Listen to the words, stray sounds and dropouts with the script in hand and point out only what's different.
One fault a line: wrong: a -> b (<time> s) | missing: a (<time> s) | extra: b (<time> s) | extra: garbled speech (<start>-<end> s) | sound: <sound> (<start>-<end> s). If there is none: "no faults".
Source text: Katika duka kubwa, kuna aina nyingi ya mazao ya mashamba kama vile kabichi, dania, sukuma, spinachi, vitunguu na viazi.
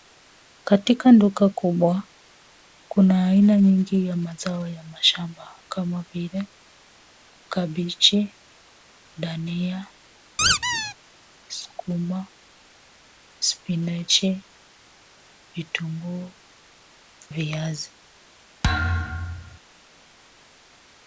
sound: squeak (10.4-10.9 s)
missing: na (16.4 s)
sound: thud (18.6-19.6 s)